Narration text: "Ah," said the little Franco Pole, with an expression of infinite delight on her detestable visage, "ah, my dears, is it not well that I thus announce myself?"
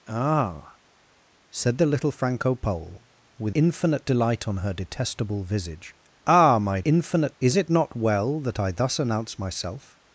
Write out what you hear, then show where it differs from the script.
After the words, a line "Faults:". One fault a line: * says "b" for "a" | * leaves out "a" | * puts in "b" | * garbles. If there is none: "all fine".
"Ah," said the little Franco Pole, with infinite delight on her detestable visage, "ah, my infinite, is it not well that I thus announce myself?"
Faults:
* leaves out "an expression of"
* says "infinite" for "dears"